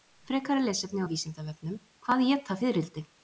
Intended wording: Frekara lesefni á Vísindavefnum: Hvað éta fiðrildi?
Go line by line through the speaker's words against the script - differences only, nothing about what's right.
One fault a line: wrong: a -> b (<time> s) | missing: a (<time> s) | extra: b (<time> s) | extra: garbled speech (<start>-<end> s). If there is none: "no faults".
no faults